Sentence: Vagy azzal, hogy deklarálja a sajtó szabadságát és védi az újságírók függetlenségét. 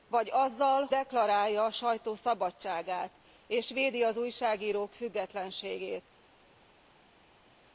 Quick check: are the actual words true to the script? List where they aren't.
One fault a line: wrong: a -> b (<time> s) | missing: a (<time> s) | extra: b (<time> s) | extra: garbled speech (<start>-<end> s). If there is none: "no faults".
missing: hogy (0.9 s)